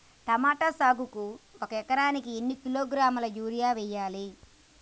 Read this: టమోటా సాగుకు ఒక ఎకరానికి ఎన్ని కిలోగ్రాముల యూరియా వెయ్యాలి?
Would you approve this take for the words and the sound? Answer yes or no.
yes